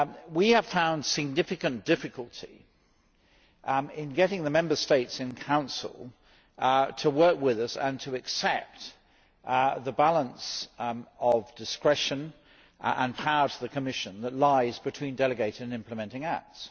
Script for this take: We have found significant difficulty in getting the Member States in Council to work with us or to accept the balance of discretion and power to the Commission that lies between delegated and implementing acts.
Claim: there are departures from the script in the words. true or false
true